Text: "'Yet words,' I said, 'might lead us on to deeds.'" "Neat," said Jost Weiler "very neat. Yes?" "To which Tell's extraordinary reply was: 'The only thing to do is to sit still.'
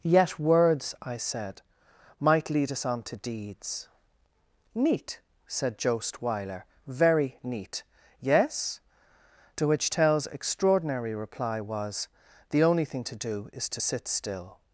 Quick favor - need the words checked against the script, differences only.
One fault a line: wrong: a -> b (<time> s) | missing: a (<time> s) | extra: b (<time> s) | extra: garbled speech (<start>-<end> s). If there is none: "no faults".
no faults